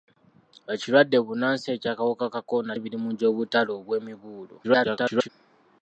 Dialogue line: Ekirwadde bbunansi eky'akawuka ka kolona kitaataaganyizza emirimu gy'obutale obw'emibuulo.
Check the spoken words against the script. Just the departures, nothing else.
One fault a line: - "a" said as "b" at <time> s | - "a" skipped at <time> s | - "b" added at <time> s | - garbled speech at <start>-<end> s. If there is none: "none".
- "kitaataaganyizza" skipped at 2.7 s
- garbled speech at 4.6-5.3 s